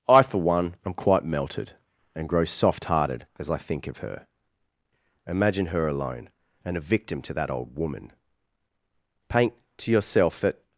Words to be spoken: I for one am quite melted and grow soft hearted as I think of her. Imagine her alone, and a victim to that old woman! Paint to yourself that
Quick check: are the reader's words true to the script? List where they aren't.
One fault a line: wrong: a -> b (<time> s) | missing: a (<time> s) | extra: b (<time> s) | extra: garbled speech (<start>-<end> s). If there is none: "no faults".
no faults